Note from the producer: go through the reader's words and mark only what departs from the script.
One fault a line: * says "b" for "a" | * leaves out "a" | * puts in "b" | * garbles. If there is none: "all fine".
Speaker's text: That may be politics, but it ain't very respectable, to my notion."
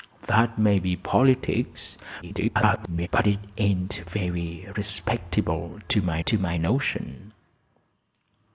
* garbles
* puts in "to my"